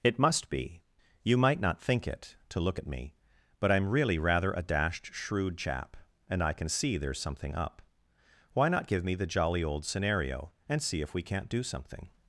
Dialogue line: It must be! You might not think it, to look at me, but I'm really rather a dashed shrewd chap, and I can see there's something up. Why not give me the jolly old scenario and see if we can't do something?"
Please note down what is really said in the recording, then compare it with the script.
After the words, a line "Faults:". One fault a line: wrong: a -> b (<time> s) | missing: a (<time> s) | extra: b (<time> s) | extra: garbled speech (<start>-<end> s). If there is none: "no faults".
It must be! You might not think it, to look at me, but I'm really rather a dashed shrewd chap, and I can see there's something up. Why not give me the jolly old scenario and see if we can't do something?"
Faults:
no faults